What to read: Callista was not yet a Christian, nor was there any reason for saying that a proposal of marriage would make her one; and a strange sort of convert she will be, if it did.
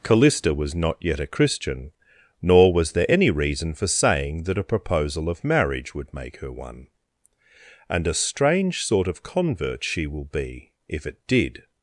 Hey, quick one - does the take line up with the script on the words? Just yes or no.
yes